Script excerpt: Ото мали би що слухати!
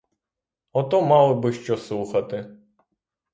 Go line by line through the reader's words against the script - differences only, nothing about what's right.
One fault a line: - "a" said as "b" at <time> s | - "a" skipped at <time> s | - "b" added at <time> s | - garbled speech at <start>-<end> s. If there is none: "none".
none